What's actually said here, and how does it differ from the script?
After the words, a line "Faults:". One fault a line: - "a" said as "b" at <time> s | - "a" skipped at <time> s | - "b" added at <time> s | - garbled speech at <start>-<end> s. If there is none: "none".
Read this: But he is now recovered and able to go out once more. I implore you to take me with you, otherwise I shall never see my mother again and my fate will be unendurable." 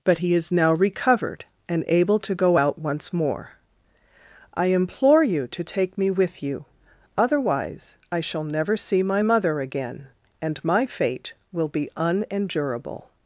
But he is now recovered and able to go out once more. I implore you to take me with you, otherwise I shall never see my mother again and my fate will be unendurable."
Faults:
none